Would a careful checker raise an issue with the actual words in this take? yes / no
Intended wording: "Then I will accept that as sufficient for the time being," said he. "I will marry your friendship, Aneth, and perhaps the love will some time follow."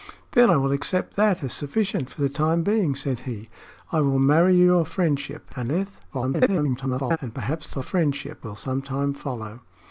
yes